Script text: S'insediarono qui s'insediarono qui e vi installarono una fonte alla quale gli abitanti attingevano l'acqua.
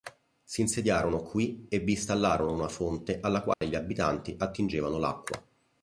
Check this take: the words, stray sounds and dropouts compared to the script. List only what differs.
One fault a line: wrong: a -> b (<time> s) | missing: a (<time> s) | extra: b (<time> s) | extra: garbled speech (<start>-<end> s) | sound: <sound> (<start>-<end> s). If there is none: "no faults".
missing: s'insediarono qui (1.7 s)
sound: dropout (3.5-3.6 s)